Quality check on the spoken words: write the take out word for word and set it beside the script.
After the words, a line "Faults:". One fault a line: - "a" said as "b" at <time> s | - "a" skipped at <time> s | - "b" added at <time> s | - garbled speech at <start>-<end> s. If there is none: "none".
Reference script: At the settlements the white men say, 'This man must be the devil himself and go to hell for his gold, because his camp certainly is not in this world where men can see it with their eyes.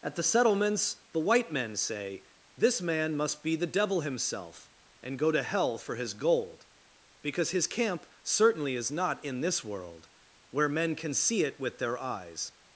At the settlements the white men say, 'This man must be the devil himself and go to hell for his gold, because his camp certainly is not in this world where men can see it with their eyes.
Faults:
none